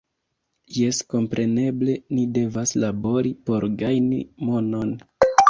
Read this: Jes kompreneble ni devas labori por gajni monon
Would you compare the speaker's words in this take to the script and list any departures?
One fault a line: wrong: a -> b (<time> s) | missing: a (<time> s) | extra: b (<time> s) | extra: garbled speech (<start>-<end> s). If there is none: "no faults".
no faults